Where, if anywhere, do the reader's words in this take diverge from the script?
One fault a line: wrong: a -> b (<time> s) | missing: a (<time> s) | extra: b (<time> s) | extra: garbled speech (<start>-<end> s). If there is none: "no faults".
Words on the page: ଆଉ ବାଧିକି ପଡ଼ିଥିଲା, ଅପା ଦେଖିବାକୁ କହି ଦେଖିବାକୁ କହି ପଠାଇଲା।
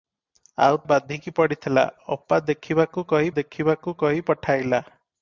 no faults